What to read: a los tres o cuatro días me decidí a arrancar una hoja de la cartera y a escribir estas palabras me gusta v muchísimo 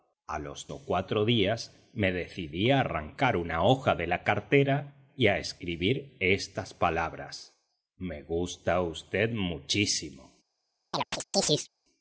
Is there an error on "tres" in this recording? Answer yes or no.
yes